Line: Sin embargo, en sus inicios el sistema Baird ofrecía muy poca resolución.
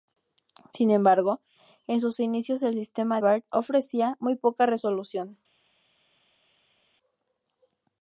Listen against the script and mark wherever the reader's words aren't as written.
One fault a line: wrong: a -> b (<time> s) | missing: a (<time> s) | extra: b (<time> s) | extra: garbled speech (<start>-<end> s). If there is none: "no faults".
no faults